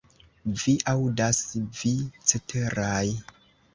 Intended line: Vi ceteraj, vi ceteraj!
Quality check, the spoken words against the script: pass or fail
fail